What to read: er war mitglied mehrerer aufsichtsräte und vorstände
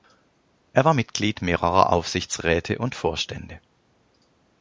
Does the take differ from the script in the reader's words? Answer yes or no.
no